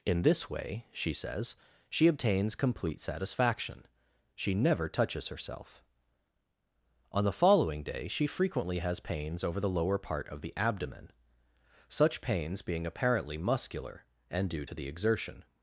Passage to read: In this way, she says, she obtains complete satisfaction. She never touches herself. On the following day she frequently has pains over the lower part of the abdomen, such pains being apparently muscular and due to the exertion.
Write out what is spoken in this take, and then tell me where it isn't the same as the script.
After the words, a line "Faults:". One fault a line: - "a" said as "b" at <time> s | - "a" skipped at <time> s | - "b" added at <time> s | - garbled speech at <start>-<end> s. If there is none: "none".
In this way, she says, she obtains complete satisfaction. She never touches herself. On the following day she frequently has pains over the lower part of the abdomen, such pains being apparently muscular and due to the exertion.
Faults:
none